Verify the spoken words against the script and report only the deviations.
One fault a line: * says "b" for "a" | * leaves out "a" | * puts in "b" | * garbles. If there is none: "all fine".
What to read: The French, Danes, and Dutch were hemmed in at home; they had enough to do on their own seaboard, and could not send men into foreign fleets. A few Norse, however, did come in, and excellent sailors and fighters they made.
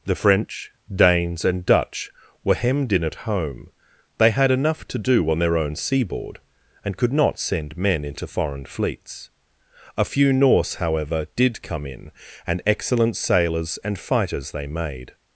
all fine